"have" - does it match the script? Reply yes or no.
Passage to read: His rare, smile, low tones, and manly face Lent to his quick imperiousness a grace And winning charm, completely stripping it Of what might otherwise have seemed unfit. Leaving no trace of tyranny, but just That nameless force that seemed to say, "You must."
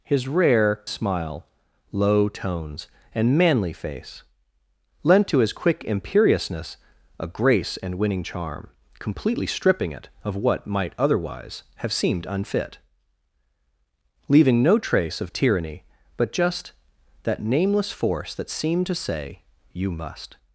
yes